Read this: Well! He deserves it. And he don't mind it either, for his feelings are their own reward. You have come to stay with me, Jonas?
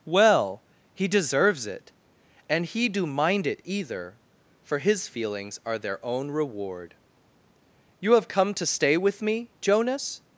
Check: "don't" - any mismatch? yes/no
yes